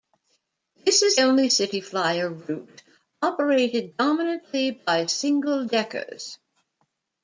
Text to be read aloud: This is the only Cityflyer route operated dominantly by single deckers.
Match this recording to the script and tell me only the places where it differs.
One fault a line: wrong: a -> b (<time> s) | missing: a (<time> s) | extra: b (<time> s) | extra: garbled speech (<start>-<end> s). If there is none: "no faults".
missing: the (1.2 s)